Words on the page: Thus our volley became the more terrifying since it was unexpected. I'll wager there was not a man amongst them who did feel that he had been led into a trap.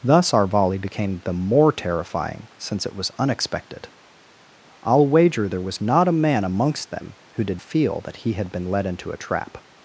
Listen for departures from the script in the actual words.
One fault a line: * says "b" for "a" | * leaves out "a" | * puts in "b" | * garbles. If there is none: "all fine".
all fine